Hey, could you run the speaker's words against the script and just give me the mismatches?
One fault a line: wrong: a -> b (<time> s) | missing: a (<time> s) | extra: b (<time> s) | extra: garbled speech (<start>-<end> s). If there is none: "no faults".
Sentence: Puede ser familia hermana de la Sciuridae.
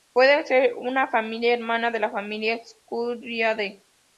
extra: una (0.7 s)
extra: familia (2.1 s)